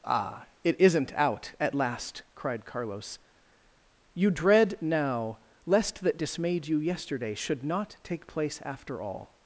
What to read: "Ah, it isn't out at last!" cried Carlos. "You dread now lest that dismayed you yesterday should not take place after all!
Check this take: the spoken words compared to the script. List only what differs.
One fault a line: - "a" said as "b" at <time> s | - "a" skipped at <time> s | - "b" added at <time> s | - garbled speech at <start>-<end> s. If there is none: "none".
none